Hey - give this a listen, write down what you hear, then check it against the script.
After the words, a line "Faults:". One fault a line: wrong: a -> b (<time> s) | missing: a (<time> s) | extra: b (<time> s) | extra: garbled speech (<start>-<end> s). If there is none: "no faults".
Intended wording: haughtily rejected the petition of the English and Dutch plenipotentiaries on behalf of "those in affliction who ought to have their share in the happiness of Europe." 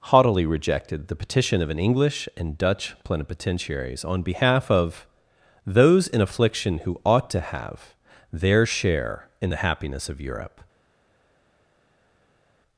haughtily rejected the petition of an English and Dutch plenipotentiaries on behalf of "those in affliction who ought to have their share in the happiness of Europe."
Faults:
wrong: the -> an (1.7 s)